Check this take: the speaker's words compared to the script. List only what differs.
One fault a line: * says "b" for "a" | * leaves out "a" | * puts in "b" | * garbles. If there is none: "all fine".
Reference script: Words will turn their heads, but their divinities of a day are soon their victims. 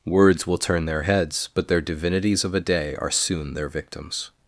all fine